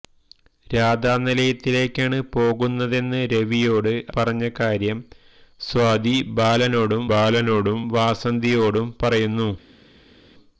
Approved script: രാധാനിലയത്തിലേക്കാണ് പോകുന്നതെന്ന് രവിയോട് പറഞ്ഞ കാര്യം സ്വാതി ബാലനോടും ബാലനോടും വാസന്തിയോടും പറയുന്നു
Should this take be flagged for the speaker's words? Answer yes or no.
no